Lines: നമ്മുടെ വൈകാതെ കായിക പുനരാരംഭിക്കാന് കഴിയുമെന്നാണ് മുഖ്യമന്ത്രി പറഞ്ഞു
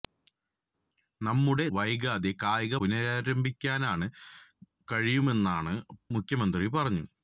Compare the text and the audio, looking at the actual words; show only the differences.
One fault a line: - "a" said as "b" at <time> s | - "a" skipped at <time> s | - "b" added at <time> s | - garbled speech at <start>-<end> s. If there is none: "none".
none